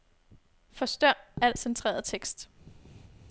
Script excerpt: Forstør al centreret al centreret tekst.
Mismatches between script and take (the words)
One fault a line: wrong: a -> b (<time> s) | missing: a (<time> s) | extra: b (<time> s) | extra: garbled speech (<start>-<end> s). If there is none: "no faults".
missing: al centreret (2.0 s)